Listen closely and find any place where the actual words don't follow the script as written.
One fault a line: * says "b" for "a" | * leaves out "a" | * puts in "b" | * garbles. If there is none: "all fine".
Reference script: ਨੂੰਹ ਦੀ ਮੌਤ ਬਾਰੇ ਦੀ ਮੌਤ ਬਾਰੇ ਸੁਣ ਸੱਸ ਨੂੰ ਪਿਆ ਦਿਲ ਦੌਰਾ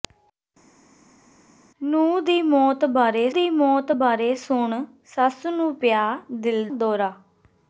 all fine